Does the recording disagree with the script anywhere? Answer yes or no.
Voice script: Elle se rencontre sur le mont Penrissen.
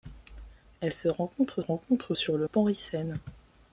yes